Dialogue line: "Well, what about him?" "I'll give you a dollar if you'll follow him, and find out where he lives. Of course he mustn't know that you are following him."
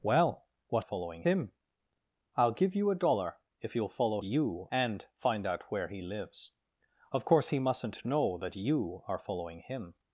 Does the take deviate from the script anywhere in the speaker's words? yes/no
yes